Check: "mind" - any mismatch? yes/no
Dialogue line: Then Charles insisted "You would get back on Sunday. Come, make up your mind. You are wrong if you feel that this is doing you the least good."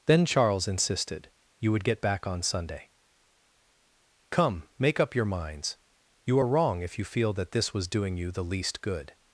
yes